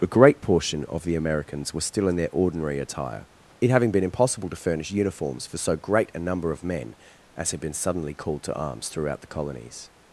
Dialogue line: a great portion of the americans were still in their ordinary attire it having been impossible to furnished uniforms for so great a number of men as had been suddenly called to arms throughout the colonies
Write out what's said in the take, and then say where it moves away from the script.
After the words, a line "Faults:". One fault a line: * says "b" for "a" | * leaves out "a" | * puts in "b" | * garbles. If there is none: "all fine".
a great portion of the americans were still in their ordinary attire it having been impossible to furnish uniforms for so great a number of men as had been suddenly called to arms throughout the colonies
Faults:
* says "furnish" for "furnished"